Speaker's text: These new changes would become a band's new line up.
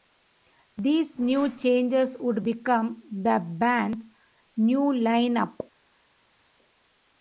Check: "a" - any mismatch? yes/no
yes